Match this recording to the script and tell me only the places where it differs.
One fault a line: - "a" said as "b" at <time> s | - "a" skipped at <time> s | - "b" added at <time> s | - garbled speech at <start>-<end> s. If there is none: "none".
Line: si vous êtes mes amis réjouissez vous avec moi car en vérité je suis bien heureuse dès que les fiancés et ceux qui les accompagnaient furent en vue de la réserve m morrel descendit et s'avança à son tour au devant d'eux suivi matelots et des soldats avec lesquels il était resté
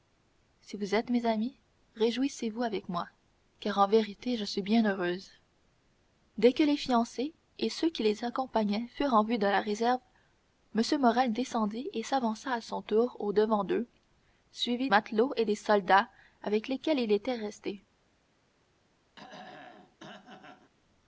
none